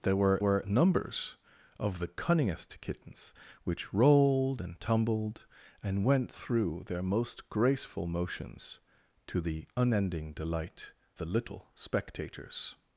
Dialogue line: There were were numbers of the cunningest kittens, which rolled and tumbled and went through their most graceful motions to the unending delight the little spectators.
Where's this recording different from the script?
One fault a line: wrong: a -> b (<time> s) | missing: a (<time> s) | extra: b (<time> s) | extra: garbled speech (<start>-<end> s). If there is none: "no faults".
no faults